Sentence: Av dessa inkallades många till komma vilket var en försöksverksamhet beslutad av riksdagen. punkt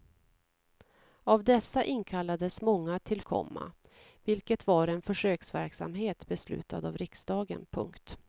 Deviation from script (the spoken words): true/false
false